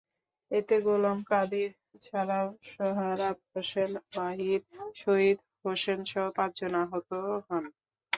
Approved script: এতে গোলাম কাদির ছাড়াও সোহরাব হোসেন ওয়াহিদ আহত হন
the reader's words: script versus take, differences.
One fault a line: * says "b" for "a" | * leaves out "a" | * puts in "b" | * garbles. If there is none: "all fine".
* puts in "শহীদ হোসেনসহ পাঁচজন"